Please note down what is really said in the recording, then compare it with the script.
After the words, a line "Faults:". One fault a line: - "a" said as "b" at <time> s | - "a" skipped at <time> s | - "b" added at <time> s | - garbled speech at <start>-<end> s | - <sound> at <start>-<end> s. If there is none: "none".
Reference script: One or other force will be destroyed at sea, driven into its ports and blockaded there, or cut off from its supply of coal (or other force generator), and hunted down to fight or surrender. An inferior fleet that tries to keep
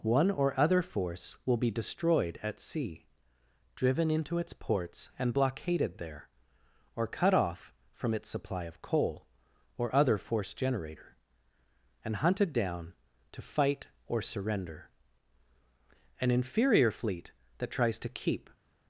One or other force will be destroyed at sea, driven into its ports and blockaded there, or cut off from its supply of coal (or other force generator), and hunted down to fight or surrender. An inferior fleet that tries to keep
Faults:
none